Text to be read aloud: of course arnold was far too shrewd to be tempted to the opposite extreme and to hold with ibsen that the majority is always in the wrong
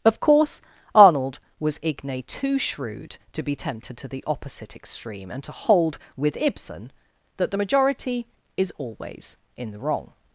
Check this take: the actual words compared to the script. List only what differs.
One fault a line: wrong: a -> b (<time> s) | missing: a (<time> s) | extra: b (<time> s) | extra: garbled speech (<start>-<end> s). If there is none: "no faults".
wrong: far -> igne (1.8 s)